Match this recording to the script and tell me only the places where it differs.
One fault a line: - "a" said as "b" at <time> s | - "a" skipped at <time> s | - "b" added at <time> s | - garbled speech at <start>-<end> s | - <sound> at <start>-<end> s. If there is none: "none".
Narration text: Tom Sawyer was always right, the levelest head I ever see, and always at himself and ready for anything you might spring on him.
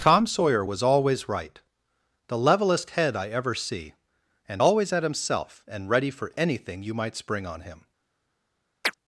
- chirp at 8.8-8.9 s